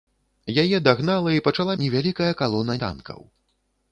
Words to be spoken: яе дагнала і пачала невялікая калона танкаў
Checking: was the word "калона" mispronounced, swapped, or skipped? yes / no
no